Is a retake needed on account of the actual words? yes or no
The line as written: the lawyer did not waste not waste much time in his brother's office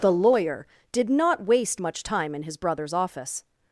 yes